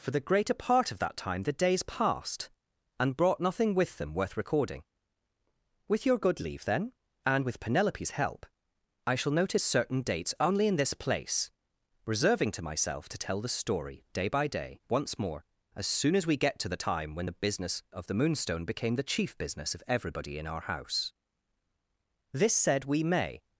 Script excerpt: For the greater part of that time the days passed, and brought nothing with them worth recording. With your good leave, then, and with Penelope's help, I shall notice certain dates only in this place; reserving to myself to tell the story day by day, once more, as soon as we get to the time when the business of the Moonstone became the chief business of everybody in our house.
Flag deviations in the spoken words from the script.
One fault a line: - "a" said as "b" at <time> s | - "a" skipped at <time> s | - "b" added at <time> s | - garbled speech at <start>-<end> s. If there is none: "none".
- "This said we may" added at 22.4 s